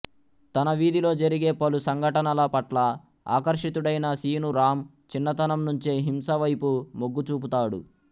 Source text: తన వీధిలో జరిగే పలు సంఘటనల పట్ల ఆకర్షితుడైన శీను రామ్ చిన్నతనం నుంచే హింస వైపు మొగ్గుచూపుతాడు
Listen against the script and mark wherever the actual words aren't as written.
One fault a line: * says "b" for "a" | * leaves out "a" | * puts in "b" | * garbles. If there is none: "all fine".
all fine